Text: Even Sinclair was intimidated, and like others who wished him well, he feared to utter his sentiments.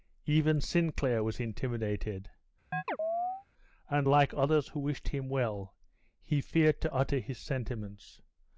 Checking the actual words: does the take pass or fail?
pass